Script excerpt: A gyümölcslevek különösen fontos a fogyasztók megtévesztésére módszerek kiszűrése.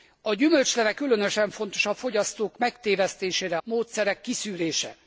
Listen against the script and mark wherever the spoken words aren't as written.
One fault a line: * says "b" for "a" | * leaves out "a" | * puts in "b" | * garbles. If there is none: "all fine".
all fine